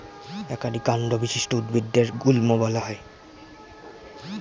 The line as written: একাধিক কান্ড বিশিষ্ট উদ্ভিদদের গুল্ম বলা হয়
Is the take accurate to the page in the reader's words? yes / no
yes